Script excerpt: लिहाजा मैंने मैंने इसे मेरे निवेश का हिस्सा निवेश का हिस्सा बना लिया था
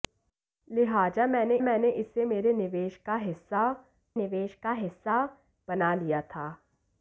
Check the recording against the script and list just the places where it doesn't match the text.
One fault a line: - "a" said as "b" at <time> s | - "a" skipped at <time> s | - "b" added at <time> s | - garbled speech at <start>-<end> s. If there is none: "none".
none